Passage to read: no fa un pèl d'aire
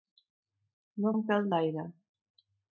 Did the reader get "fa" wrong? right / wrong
wrong